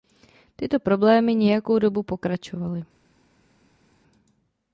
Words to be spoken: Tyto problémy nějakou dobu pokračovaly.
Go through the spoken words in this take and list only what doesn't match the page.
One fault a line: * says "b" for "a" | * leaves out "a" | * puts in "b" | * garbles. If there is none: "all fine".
all fine